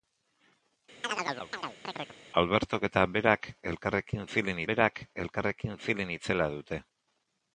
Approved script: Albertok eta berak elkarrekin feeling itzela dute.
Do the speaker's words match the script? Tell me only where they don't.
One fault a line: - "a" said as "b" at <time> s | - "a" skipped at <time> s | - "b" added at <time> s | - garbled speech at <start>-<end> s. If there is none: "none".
- "berak elkarrekin feeling" added at 4.7 s